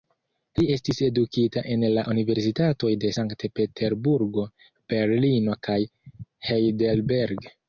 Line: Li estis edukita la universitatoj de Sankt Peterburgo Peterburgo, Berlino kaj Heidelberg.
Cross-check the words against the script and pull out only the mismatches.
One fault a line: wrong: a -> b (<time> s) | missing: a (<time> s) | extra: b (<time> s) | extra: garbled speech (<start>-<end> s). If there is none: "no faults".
extra: en (1.7 s)
missing: Peterburgo (4.5 s)